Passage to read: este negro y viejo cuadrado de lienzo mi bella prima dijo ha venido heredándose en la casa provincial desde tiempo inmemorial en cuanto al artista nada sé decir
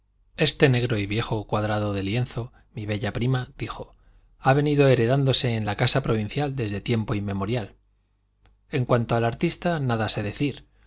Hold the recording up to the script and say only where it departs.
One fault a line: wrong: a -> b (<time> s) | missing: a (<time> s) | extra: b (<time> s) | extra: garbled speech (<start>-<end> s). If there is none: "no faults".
no faults